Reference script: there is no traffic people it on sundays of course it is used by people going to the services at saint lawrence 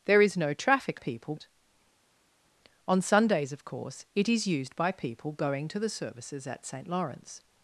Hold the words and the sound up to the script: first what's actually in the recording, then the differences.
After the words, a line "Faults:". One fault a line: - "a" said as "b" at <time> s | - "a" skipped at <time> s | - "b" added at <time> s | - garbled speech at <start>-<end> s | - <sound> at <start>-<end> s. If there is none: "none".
there is no traffic people it on sundays of course it is used by people going to the services at saint lawrence
Faults:
none